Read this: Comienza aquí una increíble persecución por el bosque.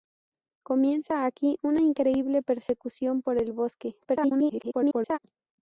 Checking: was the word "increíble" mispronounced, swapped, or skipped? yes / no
no